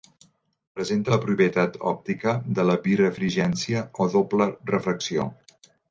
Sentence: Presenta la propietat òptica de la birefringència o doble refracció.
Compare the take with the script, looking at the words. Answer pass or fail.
pass